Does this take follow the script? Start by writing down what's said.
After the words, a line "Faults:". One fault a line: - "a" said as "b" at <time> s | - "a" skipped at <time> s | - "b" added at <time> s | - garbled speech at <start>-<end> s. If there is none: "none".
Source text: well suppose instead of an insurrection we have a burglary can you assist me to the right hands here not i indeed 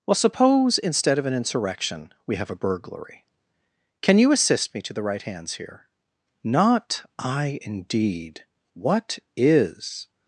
well suppose instead of an insurrection we have a burglary can you assist me to the right hands here not i indeed what is
Faults:
- "what is" added at 8.7 s